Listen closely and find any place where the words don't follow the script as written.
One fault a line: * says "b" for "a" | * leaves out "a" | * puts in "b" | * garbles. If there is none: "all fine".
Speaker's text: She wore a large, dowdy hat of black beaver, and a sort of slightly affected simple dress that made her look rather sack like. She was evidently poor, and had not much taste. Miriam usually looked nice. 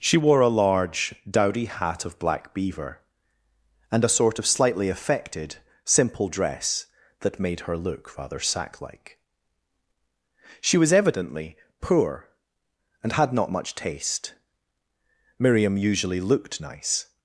all fine